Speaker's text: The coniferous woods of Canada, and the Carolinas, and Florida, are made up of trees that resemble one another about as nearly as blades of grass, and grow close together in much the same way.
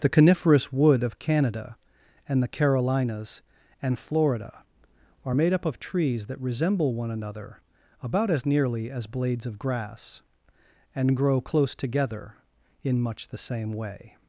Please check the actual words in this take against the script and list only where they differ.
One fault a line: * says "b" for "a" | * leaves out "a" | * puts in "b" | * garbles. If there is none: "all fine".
* says "wood" for "woods"